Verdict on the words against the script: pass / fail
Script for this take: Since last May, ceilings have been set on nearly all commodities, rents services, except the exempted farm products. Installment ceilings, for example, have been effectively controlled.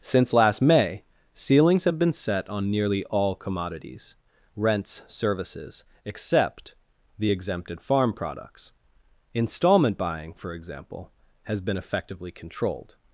fail